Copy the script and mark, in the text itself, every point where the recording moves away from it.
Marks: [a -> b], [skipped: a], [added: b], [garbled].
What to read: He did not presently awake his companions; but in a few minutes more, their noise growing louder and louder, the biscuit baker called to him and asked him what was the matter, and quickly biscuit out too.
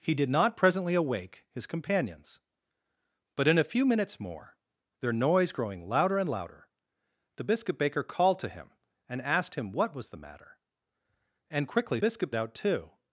He did not presently awake his companions; but in a few minutes more, their noise growing louder and louder, the biscuit baker called to him and asked him what was the matter, and quickly biscuit out too.